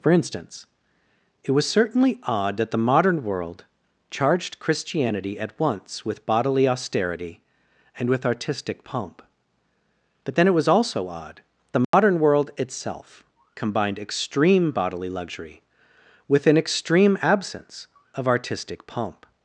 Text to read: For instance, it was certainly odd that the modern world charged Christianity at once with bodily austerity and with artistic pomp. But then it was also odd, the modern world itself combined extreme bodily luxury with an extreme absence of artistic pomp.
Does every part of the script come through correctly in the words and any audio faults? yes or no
no